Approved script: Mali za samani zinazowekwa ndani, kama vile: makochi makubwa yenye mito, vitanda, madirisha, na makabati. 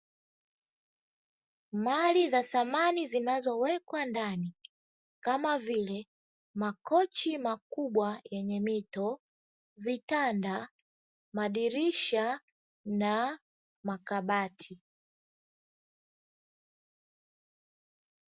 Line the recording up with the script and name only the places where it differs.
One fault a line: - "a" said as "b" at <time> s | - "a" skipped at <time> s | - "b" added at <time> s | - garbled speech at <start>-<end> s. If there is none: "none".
none